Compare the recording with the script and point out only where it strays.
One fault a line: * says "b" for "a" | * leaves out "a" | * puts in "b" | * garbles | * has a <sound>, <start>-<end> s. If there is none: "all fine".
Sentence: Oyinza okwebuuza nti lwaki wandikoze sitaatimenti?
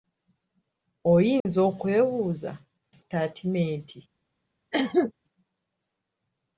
* has a dropout, 1.4-1.5 s
* leaves out "nti lwaki wandikoze"
* has a cough, 4.7-5.1 s